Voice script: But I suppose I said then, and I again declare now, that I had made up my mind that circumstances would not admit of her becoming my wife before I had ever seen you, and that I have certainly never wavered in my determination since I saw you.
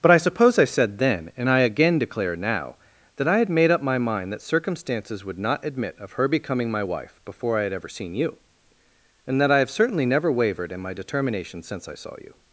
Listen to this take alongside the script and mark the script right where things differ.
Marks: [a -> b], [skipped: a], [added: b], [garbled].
But I suppose I said then, and I again declare now, that I had made up my mind that circumstances would not admit of her becoming my wife before I had ever seen you, and that I have certainly never wavered in my determination since I saw you.